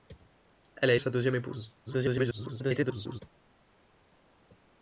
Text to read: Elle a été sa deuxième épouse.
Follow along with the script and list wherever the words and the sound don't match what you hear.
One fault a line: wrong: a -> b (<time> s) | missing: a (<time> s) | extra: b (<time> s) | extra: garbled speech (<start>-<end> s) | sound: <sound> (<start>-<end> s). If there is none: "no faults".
missing: été (0.9 s)
extra: garbled speech (1.9-3.2 s)